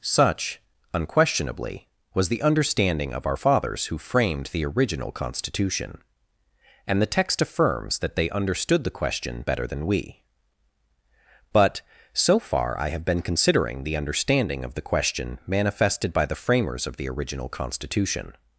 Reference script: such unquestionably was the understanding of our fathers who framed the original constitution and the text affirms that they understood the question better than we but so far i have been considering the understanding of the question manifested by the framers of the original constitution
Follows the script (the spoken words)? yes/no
yes